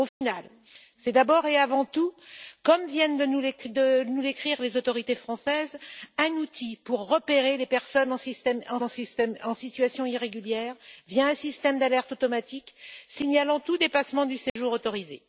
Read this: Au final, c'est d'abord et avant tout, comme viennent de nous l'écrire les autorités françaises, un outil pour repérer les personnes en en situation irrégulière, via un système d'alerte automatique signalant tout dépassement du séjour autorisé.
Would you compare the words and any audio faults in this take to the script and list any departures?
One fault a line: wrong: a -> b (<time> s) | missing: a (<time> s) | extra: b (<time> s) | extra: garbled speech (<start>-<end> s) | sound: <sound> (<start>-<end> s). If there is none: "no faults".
sound: dropout (0.1-0.2 s)
sound: dropout (14.5-14.6 s)